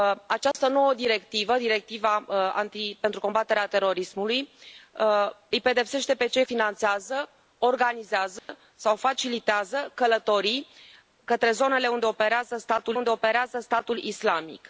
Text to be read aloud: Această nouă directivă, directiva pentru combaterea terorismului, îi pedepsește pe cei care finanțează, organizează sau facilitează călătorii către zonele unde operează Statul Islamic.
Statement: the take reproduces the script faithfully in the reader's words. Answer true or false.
false